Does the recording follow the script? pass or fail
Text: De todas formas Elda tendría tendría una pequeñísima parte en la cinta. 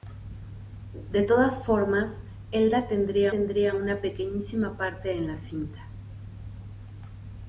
pass